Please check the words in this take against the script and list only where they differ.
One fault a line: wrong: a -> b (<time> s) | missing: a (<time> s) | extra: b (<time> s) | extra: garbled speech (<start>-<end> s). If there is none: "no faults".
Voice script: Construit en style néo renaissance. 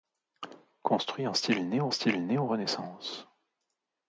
extra: style néo (1.9 s)